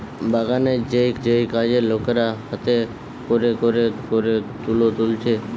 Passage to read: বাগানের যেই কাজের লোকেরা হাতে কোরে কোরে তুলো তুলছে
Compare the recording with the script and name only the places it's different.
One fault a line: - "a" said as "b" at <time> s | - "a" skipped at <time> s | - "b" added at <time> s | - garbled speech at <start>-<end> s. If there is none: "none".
- "যেই" added at 1.2 s
- "কোরে" added at 4.1 s